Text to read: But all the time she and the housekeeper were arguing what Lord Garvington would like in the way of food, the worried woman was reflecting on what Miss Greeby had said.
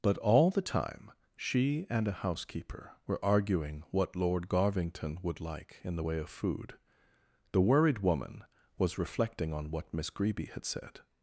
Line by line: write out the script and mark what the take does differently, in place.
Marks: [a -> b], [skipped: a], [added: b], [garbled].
But all the time she and [the -> a] housekeeper were arguing what Lord Garvington would like in the way of food, the worried woman was reflecting on what Miss Greeby had said.